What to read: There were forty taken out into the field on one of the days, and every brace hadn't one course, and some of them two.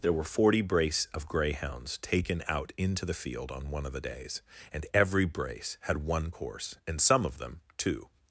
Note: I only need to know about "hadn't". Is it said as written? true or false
false